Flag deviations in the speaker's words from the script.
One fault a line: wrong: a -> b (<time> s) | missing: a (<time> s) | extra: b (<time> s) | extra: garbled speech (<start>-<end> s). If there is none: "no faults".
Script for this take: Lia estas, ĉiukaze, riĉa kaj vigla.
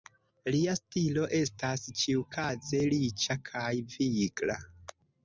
extra: stilo (0.8 s)